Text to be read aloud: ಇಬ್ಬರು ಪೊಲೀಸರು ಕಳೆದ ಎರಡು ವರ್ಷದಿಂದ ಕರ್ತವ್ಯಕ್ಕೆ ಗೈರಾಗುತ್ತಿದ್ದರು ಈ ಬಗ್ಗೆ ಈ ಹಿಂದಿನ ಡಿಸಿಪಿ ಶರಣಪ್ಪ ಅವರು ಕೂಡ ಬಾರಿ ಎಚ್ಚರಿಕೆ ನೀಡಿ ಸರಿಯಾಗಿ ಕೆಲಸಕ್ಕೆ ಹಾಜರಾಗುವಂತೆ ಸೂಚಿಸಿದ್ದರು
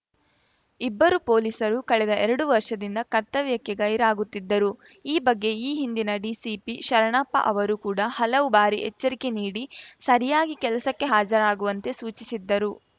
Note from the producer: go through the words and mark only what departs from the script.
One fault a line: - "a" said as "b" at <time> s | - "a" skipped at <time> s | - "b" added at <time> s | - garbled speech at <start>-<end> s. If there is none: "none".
- "ಹಲವು" added at 8.2 s